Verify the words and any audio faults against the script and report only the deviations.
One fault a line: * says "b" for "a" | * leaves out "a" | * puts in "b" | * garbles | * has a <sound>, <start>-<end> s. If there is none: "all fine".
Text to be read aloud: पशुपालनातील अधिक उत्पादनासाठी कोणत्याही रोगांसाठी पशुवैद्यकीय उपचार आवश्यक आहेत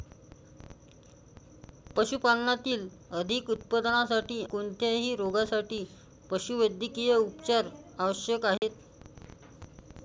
* has a dropout, 8.6-8.6 s